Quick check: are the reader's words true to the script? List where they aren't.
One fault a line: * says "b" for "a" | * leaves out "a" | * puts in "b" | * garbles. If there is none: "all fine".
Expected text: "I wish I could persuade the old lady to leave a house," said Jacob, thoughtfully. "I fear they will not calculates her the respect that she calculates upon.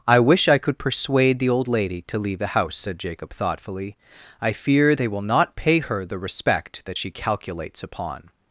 * says "the" for "a"
* says "pay" for "calculates"